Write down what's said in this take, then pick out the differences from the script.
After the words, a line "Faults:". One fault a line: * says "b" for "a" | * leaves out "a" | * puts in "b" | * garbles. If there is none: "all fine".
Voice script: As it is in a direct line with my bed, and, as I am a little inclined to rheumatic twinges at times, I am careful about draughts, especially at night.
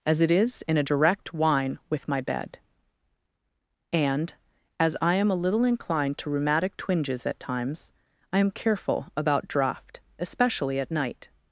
As it is in a direct wine with my bed, and, as I am a little inclined to rheumatic twinges at times, I am careful about draught, especially at night.
Faults:
* says "wine" for "line"
* says "draught" for "draughts"